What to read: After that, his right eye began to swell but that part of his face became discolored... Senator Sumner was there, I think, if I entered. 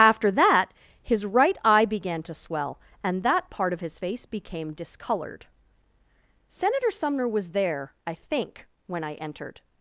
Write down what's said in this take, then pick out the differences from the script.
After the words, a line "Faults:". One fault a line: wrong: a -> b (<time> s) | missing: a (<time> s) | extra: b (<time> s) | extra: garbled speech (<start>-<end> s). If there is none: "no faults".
After that, his right eye began to swell and that part of his face became discolored... Senator Sumner was there, I think, when I entered.
Faults:
wrong: but -> and (3.0 s)
wrong: if -> when (8.8 s)